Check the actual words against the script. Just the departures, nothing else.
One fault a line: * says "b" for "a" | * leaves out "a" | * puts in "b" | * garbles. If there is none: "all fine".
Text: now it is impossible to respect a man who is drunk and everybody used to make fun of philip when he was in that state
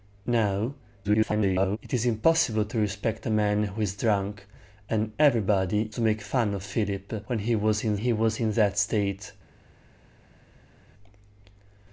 * garbles
* leaves out "used"
* puts in "he was in"